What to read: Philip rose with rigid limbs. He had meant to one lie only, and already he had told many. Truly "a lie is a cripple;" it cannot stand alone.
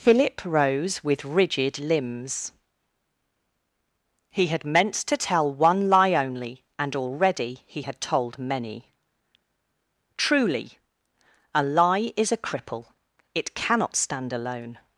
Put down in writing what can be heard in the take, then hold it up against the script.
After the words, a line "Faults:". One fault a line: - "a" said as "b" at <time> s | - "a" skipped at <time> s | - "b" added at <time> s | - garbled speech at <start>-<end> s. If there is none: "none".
Philip rose with rigid limbs. He had meant to tell one lie only, and already he had told many. Truly "a lie is a cripple;" it cannot stand alone.
Faults:
- "tell" added at 5.2 s